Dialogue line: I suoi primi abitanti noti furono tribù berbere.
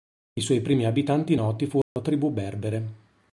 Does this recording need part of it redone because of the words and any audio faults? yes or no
yes